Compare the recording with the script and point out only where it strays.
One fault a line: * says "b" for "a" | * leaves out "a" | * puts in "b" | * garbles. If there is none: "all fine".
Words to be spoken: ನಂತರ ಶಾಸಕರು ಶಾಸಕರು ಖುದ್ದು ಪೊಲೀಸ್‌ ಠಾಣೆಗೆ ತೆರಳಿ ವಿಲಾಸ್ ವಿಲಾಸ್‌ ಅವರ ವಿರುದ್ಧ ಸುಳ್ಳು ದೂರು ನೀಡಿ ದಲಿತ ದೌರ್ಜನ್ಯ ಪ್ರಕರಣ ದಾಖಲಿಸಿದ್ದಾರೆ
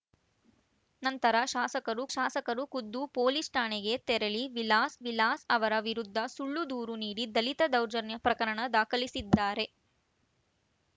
all fine